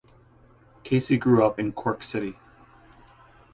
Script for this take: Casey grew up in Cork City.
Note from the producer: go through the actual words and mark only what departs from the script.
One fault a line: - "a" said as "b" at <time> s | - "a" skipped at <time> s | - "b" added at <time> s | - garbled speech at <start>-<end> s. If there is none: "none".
none